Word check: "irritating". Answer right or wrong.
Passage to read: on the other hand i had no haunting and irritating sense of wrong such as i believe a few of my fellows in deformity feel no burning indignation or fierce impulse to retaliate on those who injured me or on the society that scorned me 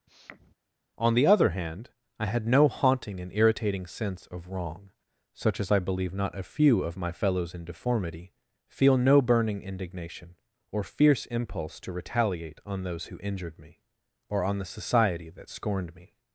right